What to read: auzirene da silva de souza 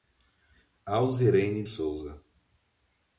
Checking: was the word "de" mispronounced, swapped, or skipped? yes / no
yes